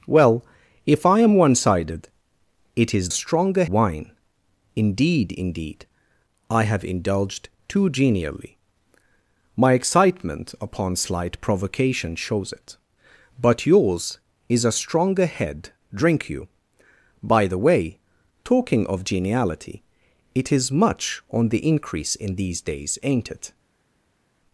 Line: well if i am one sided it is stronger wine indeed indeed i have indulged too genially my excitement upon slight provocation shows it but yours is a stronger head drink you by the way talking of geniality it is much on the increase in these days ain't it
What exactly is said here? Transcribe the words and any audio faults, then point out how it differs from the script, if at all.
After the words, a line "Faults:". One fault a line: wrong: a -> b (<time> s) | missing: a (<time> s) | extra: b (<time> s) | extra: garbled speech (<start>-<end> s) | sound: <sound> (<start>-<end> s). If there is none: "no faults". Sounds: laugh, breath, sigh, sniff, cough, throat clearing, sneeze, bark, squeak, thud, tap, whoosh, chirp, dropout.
well if i am one sided it is stronger wine indeed indeed i have indulged too genially my excitement upon slight provocation shows it but yours is a stronger head drink you by the way talking of geniality it is much on the increase in these days ain't it
Faults:
no faults